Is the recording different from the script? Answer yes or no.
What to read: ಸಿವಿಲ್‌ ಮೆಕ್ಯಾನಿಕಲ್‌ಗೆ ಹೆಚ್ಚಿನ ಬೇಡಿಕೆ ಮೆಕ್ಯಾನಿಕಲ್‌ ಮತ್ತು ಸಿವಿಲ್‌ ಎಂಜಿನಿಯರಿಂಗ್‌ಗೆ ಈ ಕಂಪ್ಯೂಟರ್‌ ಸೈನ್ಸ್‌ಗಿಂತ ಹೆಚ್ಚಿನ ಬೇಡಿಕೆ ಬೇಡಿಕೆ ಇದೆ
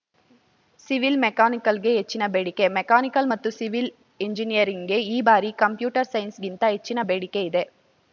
yes